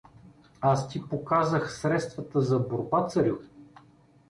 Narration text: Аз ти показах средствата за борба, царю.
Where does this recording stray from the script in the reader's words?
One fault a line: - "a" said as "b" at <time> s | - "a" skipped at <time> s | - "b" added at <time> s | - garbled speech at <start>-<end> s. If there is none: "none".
none